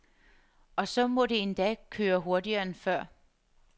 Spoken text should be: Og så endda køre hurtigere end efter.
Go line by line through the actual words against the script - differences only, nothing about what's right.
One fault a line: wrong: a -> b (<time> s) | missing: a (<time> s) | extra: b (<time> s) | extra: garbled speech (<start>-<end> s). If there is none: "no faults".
extra: må det (1.1 s)
wrong: efter -> før (2.8 s)